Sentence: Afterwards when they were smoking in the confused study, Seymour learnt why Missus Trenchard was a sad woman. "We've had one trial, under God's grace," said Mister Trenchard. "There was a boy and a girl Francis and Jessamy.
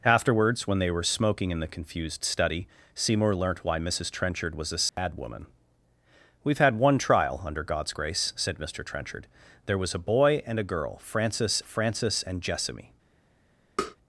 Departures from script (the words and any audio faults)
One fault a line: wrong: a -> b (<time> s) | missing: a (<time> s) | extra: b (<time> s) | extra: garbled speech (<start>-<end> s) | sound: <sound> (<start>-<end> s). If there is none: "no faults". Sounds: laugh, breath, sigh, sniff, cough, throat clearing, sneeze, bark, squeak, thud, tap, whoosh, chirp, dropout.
sound: dropout (4.9-5.0 s)
extra: Francis (11.6 s)
sound: tap (13.8-14.0 s)